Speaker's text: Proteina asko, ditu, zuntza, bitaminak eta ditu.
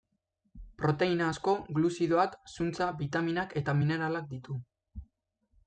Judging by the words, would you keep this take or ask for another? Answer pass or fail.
fail